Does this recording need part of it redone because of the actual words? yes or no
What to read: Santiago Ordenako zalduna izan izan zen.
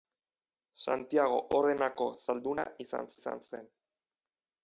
no